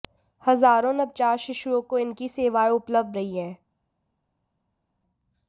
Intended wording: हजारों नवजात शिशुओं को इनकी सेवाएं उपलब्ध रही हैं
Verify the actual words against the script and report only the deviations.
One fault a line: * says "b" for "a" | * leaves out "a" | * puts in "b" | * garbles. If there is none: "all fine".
all fine